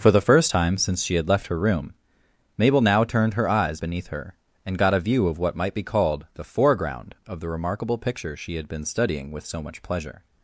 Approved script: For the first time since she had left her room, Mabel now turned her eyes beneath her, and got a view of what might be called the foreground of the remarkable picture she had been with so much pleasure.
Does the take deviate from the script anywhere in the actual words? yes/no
yes